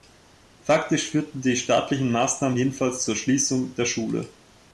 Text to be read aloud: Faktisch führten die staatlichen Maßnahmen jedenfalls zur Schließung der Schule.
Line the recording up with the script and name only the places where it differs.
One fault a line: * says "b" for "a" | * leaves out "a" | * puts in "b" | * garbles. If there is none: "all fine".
all fine